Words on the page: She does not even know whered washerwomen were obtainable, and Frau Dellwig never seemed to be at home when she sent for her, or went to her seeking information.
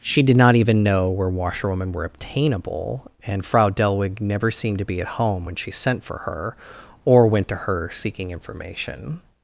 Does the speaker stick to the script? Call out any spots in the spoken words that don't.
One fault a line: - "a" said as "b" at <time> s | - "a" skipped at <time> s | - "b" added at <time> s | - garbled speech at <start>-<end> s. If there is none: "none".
- "does" said as "did" at 0.2 s
- "whered" said as "where" at 1.1 s